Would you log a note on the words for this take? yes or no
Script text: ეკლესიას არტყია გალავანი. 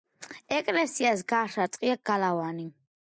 yes